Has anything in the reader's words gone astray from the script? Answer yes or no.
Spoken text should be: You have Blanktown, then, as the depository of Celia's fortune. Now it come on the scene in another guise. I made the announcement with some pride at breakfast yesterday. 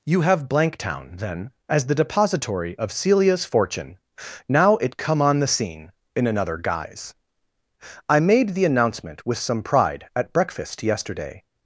no